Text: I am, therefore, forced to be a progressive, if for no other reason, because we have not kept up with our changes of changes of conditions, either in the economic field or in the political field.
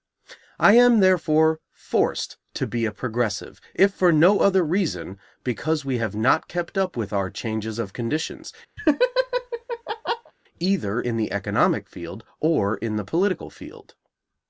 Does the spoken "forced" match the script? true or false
true